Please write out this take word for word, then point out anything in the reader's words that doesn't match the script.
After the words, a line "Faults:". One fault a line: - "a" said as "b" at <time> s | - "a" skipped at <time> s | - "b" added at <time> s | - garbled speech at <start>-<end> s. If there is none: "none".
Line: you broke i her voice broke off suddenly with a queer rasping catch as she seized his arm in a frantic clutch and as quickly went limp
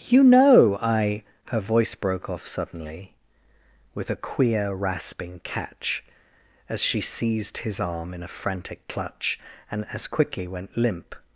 you know i her voice broke off suddenly with a queer rasping catch as she seized his arm in a frantic clutch and as quickly went limp
Faults:
- "broke" said as "know" at 0.2 s